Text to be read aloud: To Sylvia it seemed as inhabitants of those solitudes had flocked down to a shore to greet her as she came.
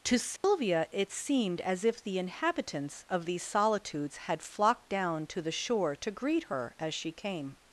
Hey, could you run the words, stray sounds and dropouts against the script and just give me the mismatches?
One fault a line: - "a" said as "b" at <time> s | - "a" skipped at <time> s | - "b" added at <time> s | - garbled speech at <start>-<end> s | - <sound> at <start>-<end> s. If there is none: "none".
- dropout at 0.4-0.4 s
- "if the" added at 1.9 s
- "those" said as "these" at 3.3 s
- "a" said as "the" at 5.4 s